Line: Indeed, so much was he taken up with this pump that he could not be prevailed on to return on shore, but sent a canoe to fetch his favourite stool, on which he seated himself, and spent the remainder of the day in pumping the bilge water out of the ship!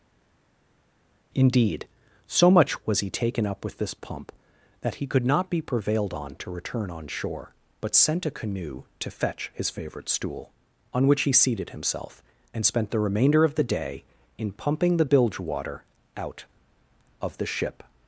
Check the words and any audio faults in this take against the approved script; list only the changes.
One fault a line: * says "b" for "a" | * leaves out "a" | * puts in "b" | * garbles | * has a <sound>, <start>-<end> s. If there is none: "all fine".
all fine